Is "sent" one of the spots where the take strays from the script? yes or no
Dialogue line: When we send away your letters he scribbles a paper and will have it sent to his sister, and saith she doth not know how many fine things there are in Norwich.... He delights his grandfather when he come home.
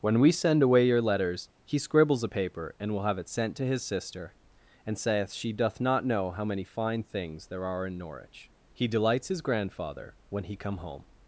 no